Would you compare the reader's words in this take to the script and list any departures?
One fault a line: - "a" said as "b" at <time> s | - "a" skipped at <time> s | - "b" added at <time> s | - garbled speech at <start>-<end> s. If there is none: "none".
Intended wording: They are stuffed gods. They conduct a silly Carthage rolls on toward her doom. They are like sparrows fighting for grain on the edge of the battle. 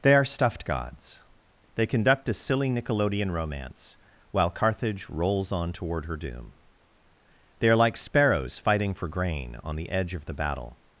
- "nickelodeon romance while" added at 2.7 s